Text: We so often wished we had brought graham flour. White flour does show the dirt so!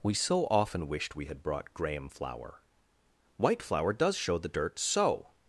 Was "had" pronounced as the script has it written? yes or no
yes